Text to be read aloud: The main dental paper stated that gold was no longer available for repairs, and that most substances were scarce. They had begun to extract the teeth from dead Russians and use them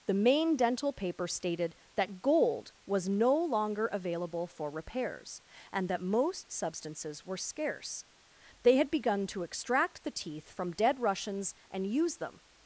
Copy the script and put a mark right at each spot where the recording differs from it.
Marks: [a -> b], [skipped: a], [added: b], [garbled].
The main dental paper stated that gold was no longer available for repairs, and that most substances were scarce. They had begun to extract the teeth from dead Russians and use them